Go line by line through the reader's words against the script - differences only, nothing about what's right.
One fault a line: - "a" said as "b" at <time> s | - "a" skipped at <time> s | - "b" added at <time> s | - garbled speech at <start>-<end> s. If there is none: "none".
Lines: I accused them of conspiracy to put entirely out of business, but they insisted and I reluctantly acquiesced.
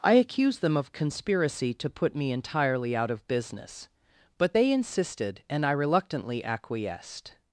- "me" added at 2.1 s